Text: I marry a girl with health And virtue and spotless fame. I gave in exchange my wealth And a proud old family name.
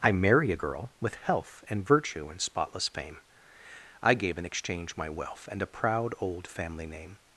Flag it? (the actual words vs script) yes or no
no